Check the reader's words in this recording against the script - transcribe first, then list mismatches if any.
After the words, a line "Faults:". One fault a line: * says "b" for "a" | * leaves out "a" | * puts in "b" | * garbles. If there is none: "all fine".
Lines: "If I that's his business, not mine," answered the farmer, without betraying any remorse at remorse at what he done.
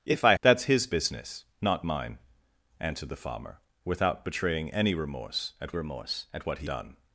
"If I that's his business, not mine," answered the farmer, without betraying any remorse at remorse at what he done.
Faults:
all fine